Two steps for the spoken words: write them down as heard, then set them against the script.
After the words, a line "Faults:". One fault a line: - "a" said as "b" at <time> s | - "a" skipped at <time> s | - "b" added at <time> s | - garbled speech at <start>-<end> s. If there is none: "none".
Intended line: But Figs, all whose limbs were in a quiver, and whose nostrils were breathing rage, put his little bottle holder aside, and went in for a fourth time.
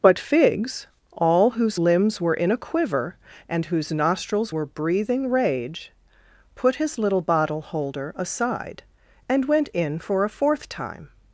But Figs, all whose limbs were in a quiver, and whose nostrils were breathing rage, put his little bottle holder aside, and went in for a fourth time.
Faults:
none